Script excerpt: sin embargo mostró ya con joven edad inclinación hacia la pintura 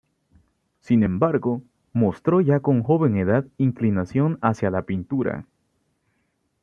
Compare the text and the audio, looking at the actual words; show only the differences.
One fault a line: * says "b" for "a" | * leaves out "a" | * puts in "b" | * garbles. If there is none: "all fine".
all fine